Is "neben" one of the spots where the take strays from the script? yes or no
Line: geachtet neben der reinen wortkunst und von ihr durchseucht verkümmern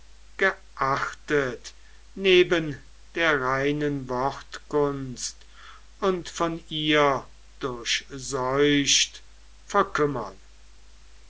no